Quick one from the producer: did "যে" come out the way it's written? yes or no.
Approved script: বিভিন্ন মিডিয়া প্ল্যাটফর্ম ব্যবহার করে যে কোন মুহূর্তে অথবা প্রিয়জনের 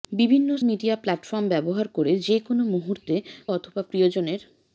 yes